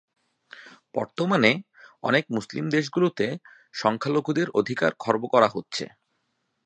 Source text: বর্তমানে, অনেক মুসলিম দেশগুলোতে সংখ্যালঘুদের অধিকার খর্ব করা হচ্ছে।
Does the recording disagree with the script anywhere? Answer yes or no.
no